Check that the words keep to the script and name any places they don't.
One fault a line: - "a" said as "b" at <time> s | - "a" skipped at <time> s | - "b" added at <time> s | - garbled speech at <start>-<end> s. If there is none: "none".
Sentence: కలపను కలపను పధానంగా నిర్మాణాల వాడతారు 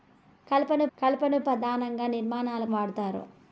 none